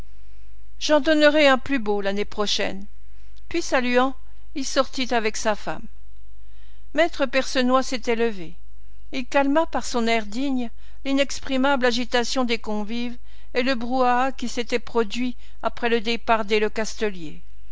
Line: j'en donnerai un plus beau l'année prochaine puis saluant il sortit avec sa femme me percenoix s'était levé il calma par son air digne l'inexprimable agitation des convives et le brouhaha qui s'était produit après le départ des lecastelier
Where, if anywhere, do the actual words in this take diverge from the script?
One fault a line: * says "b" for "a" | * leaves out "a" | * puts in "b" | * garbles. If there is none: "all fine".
all fine